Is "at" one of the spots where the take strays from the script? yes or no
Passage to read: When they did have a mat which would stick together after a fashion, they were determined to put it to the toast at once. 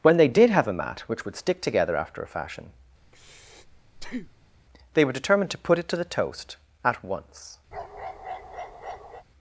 no